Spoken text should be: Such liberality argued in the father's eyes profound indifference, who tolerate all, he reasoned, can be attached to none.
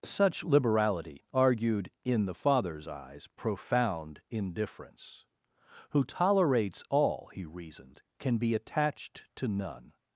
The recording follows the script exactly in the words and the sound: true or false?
false